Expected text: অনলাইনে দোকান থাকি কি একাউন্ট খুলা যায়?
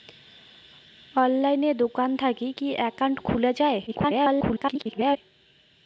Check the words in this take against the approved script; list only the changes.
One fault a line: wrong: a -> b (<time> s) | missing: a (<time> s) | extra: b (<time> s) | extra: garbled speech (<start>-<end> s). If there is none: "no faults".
extra: garbled speech (3.9-5.2 s)